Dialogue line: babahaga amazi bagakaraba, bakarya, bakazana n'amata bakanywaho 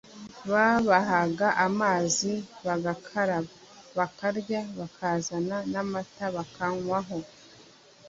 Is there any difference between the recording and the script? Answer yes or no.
no